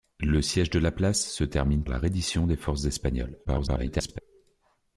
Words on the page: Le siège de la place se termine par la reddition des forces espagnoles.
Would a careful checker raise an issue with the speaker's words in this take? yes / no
yes